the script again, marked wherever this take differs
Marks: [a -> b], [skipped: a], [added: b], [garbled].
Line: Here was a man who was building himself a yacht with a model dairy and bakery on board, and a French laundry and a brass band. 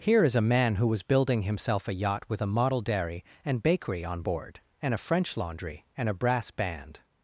Here [was -> is] a man who was building himself a yacht with a model dairy and bakery on board, and a French laundry and a brass band.